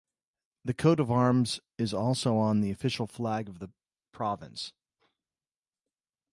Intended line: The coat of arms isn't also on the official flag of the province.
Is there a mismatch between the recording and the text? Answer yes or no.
yes